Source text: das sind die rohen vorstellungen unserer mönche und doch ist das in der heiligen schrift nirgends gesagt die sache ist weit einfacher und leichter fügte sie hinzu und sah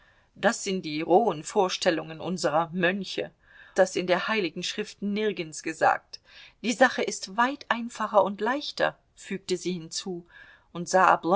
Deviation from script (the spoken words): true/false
true